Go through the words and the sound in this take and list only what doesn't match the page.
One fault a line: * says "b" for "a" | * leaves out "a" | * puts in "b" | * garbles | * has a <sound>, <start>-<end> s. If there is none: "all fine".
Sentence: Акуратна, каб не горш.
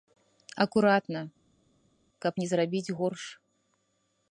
* puts in "зрабіць"